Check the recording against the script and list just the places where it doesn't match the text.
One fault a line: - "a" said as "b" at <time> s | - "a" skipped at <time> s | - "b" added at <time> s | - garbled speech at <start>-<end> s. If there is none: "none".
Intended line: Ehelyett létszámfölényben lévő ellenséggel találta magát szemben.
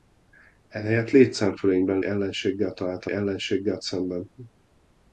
- "lévő" skipped at 2.0 s
- "magát" said as "ellenséggel" at 3.1 s